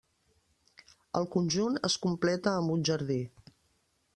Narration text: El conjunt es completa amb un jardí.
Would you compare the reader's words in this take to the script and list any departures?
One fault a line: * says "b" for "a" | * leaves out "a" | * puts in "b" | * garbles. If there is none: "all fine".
all fine